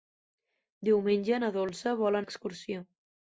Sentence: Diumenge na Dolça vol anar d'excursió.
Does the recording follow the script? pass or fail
fail